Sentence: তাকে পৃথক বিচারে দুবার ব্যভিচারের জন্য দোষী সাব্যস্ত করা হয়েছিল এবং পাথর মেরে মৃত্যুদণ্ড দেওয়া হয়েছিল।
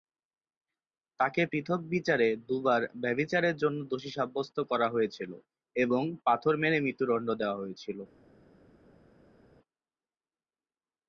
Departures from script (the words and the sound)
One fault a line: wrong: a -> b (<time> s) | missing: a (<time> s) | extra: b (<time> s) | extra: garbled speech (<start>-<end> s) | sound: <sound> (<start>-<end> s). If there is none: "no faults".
no faults